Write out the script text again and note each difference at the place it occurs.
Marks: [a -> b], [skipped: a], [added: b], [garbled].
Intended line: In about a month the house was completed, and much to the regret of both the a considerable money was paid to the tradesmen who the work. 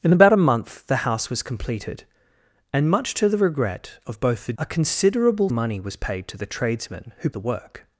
In about a month the house was completed, and much to the regret of both the a considerable money was paid to the tradesmen who the work.